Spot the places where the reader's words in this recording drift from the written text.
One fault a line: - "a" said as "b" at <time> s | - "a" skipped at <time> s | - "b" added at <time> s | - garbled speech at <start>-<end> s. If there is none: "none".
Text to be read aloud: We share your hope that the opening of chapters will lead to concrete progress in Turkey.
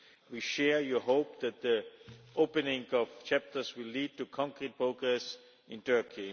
none